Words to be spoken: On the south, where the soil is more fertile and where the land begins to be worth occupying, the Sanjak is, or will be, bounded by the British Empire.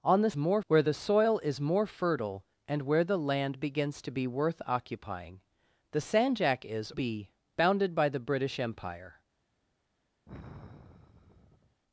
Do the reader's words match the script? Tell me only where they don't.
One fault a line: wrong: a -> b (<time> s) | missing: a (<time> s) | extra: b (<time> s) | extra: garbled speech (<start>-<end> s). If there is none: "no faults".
wrong: south -> more (0.4 s)
missing: or will (6.9 s)